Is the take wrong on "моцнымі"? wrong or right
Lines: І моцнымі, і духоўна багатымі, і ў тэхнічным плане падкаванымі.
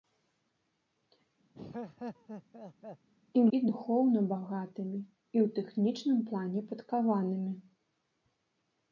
wrong